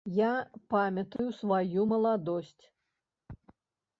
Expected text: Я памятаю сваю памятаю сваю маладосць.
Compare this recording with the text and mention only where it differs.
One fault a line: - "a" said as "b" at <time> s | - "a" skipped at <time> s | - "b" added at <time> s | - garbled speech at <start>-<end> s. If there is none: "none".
- "памятаю сваю" skipped at 1.9 s